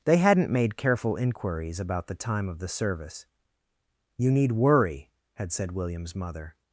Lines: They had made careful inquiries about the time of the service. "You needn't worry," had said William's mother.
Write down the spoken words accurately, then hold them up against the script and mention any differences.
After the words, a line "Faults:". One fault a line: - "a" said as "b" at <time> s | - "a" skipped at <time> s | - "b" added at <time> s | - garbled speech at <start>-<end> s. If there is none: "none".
They hadn't made careful inquiries about the time of the service. "You need worry," had said William's mother.
Faults:
- "had" said as "hadn't" at 0.2 s
- "needn't" said as "need" at 4.3 s